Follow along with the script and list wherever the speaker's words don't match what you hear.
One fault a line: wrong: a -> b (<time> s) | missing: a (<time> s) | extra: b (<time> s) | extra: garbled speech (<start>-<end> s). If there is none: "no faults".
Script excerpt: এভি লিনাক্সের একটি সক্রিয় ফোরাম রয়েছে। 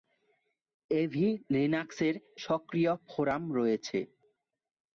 missing: একটি (2.1 s)